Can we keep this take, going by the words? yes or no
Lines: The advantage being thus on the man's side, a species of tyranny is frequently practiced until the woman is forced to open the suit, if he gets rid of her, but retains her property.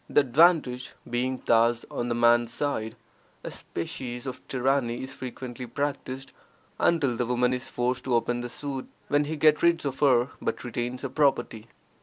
no